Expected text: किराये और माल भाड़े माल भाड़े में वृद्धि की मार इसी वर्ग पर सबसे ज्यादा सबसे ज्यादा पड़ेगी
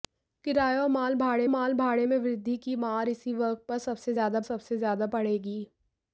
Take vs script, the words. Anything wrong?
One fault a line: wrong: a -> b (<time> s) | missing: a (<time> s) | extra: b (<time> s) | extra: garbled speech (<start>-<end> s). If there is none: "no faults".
no faults